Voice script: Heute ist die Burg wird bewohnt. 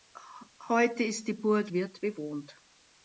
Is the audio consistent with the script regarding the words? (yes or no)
yes